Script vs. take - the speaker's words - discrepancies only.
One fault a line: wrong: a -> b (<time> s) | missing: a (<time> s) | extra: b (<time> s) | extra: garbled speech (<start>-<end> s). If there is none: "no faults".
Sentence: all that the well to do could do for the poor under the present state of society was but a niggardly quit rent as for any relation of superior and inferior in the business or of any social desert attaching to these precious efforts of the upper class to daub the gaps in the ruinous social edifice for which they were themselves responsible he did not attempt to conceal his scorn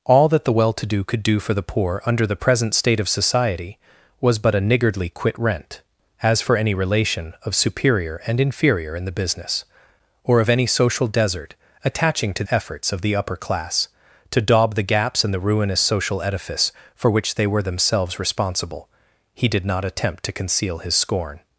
missing: these precious (12.4 s)